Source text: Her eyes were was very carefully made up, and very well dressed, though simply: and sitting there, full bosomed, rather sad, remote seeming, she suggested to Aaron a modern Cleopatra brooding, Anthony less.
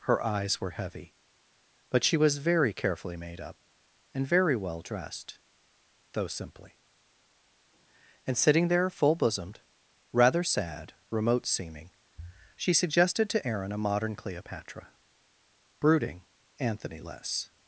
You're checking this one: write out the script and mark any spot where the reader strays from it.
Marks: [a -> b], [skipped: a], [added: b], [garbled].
Her eyes were [added: heavy But she] was very carefully made up, and very well dressed, though simply: and sitting there, full bosomed, rather sad, remote seeming, she suggested to Aaron a modern Cleopatra brooding, Anthony less.